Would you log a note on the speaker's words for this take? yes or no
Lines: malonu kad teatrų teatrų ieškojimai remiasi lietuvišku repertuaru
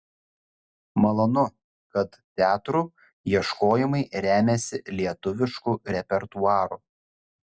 yes